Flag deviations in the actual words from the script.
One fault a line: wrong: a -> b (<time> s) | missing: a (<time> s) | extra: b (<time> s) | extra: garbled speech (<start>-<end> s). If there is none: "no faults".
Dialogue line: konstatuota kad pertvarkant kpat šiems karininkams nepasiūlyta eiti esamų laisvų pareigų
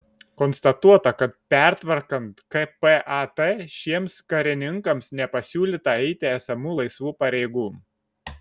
no faults